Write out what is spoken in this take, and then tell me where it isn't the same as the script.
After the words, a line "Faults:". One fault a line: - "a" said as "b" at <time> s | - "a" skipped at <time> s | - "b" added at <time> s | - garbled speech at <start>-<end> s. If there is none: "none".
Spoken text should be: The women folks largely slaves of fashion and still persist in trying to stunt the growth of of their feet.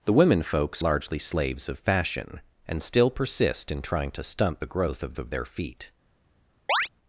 The women folks largely slaves of fashion and still persist in trying to stunt the growth of of their feet.
Faults:
none